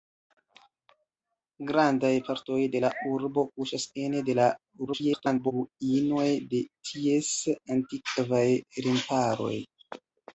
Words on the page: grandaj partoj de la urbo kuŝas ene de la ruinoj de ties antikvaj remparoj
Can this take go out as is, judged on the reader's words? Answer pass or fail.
fail